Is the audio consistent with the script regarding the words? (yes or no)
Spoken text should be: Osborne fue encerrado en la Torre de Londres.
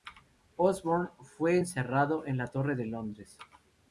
yes